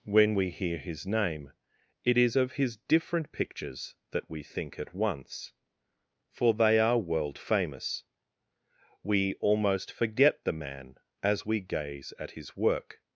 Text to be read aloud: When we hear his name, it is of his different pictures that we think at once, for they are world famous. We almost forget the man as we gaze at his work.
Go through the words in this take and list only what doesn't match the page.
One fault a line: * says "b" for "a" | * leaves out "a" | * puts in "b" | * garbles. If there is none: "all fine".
all fine